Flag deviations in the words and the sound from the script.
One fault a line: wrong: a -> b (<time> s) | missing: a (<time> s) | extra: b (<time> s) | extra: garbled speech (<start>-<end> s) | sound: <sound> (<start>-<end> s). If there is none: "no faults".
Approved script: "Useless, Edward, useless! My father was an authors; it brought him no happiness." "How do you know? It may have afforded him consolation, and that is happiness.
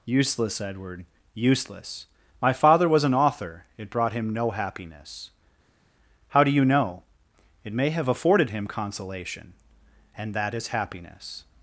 wrong: authors -> author (3.1 s)